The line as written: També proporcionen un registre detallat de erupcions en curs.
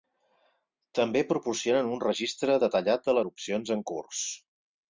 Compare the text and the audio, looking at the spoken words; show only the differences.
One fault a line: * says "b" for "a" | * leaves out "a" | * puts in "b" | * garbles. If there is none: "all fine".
all fine